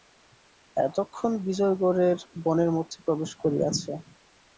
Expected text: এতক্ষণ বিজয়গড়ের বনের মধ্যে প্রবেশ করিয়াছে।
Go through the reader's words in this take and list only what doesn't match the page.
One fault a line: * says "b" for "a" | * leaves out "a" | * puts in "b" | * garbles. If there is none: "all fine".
all fine